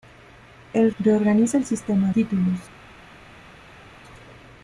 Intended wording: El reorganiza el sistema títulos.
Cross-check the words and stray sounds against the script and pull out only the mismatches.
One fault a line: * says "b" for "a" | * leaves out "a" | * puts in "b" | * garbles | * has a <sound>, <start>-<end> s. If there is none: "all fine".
all fine